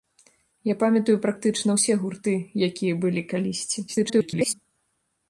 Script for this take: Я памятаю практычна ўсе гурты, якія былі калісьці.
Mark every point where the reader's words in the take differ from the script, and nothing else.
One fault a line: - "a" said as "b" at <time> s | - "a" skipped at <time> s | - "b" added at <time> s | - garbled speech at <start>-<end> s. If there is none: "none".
- garbled speech at 3.9-4.5 s